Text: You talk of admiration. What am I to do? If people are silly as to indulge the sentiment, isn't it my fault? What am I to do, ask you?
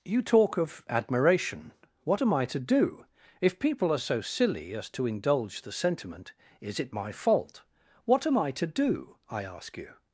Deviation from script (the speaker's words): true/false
true